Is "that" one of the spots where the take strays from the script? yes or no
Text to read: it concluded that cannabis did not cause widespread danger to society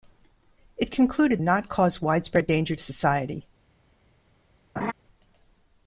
yes